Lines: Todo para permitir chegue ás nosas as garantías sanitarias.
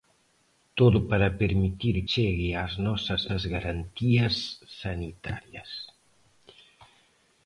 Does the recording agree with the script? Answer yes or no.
yes